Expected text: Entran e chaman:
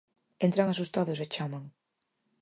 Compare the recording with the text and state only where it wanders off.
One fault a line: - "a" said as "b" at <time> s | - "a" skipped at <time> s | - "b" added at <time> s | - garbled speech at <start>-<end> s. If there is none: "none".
- "asustados" added at 0.7 s